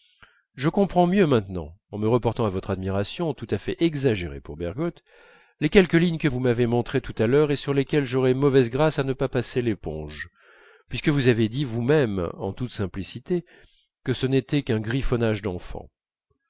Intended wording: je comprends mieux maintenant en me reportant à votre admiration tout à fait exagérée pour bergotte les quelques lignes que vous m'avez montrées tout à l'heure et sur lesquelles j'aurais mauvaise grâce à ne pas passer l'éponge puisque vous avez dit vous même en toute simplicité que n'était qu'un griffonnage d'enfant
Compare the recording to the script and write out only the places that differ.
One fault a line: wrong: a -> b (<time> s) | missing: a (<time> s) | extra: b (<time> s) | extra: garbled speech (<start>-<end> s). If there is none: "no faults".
extra: ce (14.1 s)